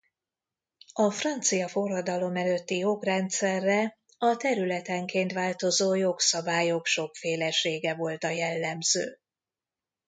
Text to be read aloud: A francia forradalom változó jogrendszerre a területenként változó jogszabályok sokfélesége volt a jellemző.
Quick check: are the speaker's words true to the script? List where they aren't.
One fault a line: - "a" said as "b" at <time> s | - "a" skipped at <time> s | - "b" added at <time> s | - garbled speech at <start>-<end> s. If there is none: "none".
- "változó" said as "előtti" at 2.3 s